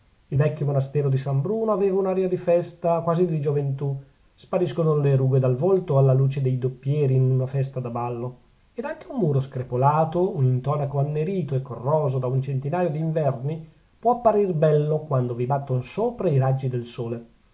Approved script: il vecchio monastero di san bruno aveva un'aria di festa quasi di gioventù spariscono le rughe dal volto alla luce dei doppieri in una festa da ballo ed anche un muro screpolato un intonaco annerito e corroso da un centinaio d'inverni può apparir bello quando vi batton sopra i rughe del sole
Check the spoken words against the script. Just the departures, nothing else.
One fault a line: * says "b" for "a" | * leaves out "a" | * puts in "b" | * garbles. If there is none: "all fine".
* says "raggi" for "rughe"